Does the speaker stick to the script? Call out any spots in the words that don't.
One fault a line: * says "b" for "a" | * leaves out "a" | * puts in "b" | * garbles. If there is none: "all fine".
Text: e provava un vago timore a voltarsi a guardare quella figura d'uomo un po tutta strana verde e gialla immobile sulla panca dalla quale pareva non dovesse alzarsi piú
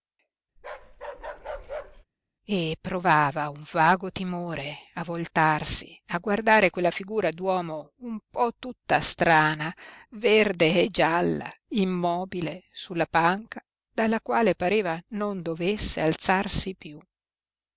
all fine